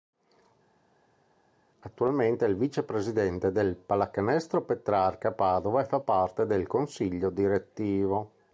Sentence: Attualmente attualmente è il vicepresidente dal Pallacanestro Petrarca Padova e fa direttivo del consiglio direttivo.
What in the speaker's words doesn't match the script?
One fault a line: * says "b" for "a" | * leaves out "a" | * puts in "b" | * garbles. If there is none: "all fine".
* leaves out "attualmente"
* says "del" for "dal"
* says "parte" for "direttivo"